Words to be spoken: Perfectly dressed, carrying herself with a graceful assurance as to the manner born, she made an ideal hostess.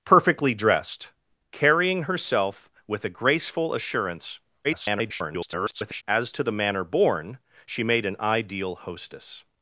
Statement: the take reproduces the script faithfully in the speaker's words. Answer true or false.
false